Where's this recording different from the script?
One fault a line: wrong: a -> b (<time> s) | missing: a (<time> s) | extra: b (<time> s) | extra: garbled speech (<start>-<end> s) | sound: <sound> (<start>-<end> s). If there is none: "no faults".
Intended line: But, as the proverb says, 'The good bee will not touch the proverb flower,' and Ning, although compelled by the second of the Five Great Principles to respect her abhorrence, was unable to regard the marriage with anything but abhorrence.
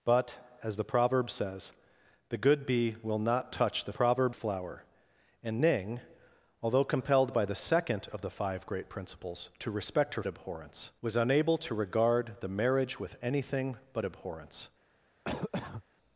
sound: cough (15.2-15.8 s)